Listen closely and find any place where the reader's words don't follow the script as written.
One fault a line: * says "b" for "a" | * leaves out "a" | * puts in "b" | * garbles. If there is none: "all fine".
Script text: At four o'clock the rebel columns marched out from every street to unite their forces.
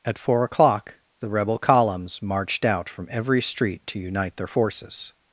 all fine